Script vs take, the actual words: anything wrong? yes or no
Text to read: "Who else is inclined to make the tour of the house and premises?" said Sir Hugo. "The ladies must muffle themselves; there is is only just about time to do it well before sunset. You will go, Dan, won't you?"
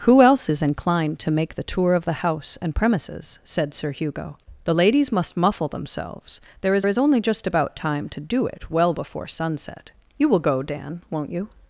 no